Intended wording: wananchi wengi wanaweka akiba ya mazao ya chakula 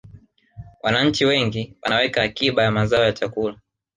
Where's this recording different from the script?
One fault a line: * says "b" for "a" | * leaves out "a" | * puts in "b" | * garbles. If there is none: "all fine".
all fine